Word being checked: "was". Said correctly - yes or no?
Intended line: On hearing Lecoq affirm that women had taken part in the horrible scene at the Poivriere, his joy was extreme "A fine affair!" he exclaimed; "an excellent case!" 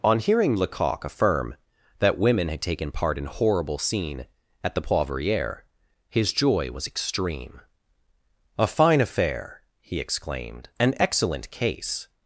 yes